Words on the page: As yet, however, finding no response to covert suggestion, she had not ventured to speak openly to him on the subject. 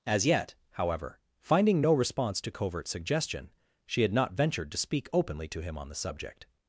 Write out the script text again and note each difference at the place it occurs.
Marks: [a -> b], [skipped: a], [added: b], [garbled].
As yet, however, finding no response to covert suggestion, she had not ventured to speak openly to him on the subject.